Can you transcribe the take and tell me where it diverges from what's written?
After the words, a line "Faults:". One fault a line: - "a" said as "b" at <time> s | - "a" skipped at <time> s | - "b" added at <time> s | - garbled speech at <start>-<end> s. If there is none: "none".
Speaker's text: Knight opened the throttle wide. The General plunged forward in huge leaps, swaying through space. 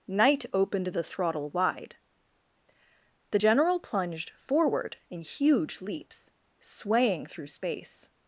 Knight opened the throttle wide. The General plunged forward in huge leaps, swaying through space.
Faults:
none